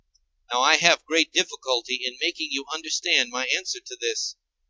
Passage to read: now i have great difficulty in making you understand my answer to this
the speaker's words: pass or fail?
pass